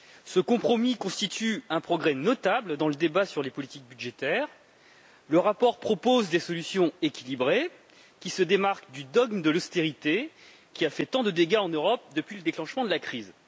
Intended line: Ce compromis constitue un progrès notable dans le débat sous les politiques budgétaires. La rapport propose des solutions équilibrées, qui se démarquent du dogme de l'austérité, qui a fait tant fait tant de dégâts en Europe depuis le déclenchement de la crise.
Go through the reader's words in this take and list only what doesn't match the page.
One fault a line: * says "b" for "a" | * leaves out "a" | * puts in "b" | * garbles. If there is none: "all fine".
* says "sur" for "sous"
* says "Le" for "La"
* leaves out "fait tant"